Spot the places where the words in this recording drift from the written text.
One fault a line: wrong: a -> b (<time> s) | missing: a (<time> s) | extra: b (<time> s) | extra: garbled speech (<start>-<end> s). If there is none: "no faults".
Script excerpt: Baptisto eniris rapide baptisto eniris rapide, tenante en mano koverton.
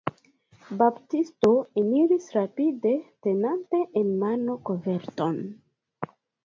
missing: baptisto eniris rapide (3.0 s)